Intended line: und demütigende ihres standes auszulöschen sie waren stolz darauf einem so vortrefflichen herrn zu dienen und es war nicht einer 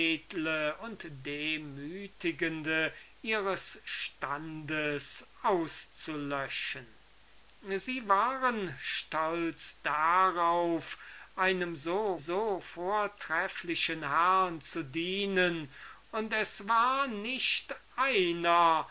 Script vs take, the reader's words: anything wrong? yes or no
yes